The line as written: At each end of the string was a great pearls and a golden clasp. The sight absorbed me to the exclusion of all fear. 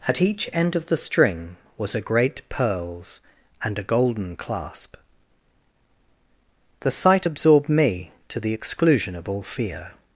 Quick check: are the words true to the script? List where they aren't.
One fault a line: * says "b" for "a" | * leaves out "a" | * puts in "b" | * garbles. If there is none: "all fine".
all fine